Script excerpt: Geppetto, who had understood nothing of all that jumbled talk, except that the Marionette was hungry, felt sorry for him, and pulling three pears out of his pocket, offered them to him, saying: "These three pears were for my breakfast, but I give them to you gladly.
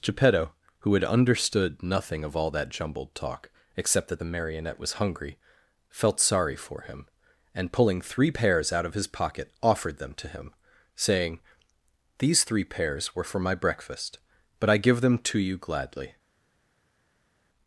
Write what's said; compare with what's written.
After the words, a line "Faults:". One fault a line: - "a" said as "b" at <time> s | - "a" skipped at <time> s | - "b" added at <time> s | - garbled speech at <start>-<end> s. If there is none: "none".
Geppetto, who had understood nothing of all that jumbled talk, except that the Marionette was hungry, felt sorry for him, and pulling three pears out of his pocket, offered them to him, saying: "These three pears were for my breakfast, but I give them to you gladly.
Faults:
none